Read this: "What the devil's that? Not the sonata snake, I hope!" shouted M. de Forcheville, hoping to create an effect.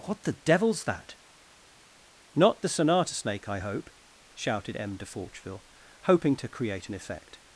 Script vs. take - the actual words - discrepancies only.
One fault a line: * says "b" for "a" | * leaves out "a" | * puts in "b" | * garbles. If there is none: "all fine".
all fine